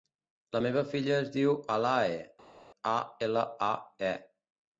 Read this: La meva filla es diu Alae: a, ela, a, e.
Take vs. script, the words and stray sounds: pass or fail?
pass